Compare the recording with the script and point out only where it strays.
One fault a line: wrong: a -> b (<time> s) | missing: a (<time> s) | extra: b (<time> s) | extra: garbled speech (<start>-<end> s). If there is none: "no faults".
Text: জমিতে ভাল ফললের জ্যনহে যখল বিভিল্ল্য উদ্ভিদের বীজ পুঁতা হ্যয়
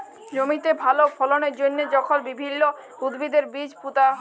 no faults